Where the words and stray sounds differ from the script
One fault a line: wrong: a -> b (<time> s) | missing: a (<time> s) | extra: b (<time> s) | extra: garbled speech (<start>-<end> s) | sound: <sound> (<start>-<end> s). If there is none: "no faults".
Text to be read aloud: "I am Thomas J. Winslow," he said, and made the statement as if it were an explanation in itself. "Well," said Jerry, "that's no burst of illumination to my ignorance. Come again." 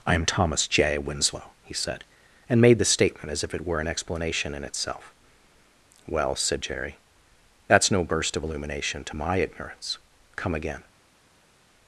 no faults